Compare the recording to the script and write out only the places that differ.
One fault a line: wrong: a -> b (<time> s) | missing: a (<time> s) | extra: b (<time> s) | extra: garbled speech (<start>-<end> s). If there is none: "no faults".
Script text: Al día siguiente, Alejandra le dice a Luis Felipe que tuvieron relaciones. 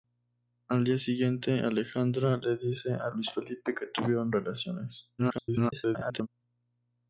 extra: garbled speech (5.2-6.3 s)